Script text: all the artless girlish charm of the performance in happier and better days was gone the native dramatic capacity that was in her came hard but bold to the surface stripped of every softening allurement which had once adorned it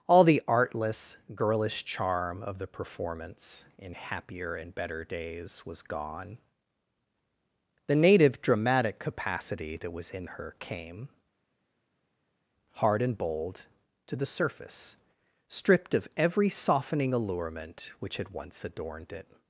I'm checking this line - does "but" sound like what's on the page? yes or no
no